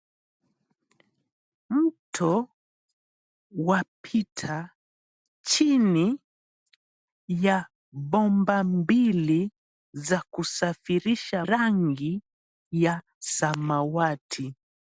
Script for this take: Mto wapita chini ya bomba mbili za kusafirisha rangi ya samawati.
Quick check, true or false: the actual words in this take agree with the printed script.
true